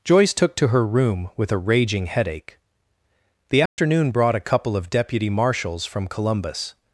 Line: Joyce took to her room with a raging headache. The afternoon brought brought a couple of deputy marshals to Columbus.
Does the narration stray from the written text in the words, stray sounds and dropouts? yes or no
yes